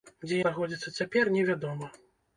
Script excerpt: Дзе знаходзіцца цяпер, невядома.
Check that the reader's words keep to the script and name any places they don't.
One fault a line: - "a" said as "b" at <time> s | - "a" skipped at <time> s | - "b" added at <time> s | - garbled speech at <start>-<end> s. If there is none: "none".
none